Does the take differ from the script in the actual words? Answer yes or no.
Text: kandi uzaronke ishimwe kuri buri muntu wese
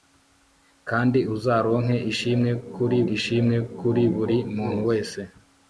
yes